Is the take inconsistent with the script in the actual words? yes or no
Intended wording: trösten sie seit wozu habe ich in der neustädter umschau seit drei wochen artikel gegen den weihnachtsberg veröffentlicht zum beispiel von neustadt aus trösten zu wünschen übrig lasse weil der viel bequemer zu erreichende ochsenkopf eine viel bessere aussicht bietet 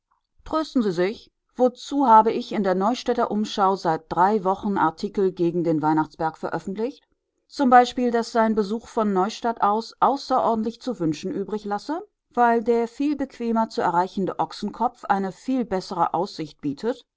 yes